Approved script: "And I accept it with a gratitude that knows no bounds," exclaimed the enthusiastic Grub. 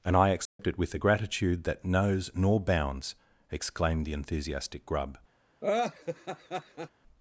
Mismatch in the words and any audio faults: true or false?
true